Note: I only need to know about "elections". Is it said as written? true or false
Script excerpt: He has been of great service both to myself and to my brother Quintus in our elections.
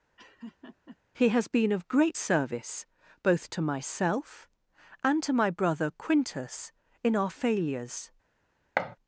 false